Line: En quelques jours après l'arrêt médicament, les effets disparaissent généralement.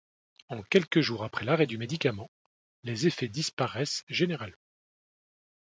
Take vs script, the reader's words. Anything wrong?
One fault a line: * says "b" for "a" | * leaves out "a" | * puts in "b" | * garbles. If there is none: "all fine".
* puts in "du"